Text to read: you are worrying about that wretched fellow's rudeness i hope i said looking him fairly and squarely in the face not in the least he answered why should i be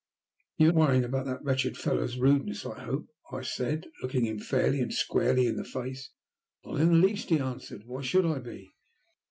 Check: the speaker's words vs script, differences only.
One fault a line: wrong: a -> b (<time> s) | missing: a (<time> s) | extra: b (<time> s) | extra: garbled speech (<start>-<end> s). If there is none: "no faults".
no faults